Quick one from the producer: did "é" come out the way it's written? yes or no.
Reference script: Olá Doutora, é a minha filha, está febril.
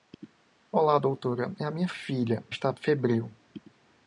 yes